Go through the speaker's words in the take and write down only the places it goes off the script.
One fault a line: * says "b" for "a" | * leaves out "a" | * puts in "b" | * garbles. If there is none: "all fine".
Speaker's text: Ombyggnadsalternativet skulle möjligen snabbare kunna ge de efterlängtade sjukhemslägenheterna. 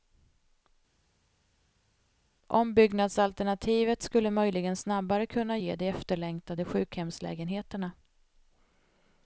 all fine